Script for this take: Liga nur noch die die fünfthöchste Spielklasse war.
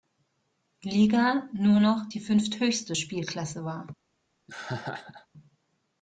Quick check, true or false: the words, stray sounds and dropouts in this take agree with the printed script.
false